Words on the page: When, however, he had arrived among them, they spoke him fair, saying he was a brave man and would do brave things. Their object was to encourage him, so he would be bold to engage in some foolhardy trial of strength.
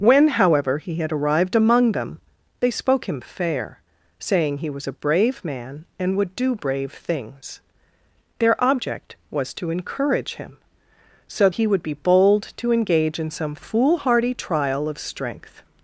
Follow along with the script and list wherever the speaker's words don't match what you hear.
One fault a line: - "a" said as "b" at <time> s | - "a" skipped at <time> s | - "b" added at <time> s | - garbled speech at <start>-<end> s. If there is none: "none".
none